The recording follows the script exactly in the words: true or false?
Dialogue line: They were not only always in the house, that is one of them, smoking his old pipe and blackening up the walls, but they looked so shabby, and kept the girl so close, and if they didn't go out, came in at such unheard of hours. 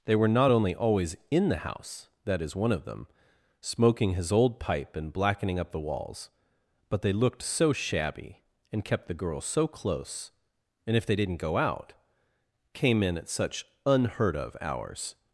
true